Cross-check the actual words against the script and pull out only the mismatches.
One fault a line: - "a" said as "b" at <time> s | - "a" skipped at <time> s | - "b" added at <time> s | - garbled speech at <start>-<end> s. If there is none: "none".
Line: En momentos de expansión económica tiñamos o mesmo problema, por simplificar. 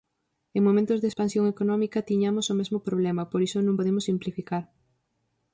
- "iso non podemos" added at 3.5 s